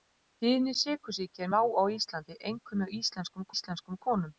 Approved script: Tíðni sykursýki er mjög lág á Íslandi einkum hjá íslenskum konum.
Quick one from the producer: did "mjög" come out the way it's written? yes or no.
no